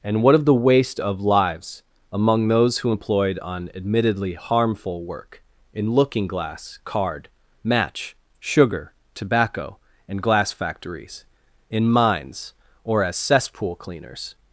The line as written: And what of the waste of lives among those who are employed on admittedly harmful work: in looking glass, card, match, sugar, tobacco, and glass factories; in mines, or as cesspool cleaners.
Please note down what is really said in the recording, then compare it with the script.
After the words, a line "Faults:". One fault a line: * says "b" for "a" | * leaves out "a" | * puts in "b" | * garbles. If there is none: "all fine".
And what of the waste of lives among those who employed on admittedly harmful work: in looking glass, card, match, sugar, tobacco, and glass factories; in mines, or as cesspool cleaners.
Faults:
* leaves out "are"